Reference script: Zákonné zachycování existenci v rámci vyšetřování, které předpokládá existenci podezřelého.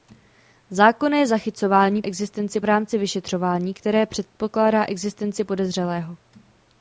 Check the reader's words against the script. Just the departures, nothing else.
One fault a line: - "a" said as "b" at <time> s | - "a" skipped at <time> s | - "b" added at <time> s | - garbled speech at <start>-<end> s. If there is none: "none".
none